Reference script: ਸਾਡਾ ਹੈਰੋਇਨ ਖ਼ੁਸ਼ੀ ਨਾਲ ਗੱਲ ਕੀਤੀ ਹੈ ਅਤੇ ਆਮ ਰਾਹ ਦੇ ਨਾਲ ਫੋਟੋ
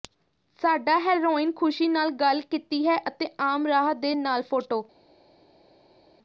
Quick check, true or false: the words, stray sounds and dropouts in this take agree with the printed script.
true